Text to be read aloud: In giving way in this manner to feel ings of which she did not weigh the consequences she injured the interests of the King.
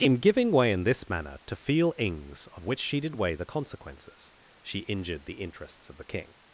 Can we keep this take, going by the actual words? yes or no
no